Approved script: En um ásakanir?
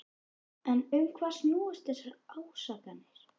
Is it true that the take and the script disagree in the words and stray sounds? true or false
true